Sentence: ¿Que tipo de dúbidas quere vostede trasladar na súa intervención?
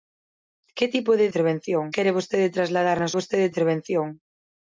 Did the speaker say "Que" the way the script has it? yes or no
yes